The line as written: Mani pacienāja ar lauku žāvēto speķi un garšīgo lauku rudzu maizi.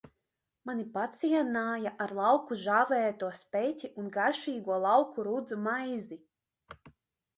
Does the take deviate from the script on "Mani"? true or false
false